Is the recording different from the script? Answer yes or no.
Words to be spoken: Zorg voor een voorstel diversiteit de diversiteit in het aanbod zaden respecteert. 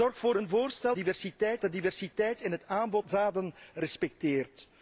no